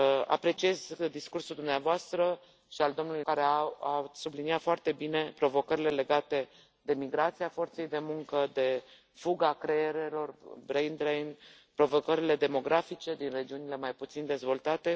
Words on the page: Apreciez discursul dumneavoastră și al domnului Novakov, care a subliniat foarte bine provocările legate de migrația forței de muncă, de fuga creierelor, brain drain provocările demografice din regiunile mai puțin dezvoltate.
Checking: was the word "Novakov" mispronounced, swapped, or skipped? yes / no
yes